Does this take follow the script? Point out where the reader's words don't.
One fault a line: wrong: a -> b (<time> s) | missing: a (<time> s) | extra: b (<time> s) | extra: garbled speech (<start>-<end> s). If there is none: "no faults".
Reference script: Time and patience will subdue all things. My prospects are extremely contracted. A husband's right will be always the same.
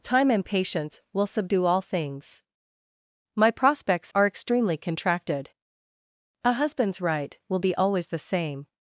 no faults